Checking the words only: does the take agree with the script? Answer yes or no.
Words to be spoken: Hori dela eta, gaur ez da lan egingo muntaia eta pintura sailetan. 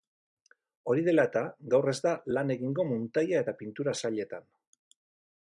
yes